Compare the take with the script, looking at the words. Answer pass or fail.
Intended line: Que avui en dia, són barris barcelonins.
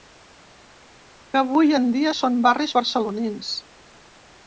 pass